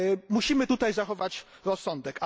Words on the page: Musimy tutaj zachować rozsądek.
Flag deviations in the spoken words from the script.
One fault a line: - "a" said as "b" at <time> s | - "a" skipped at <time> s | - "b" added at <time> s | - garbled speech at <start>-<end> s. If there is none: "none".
none